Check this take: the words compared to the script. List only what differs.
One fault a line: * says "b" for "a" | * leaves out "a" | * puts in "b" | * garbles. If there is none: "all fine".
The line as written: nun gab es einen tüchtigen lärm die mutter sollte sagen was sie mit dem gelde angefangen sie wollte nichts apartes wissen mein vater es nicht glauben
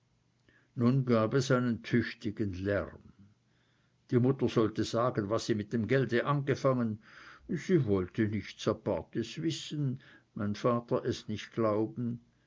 all fine